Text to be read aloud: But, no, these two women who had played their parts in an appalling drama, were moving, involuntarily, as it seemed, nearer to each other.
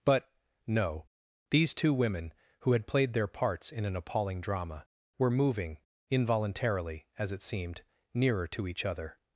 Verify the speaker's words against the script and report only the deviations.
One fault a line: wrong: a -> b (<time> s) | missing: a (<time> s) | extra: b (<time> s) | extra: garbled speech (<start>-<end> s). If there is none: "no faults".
no faults